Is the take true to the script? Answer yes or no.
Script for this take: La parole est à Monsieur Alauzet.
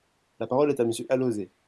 yes